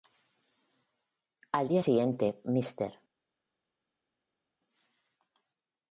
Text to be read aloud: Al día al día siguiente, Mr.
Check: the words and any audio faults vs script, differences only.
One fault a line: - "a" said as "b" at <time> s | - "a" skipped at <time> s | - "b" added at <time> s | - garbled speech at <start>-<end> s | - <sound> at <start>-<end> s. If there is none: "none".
- "al día" skipped at 1.8 s